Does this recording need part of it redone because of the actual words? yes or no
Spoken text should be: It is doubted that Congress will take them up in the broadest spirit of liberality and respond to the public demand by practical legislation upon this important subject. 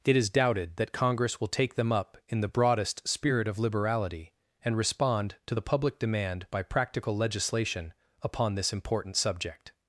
no